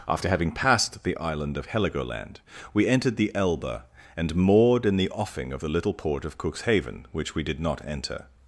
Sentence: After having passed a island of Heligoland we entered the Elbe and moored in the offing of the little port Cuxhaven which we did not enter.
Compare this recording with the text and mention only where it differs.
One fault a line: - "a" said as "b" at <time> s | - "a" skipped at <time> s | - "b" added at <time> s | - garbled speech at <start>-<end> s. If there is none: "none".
- "a" said as "the" at 1.0 s
- "of" added at 6.2 s